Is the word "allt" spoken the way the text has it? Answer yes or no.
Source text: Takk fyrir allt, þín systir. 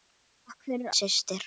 no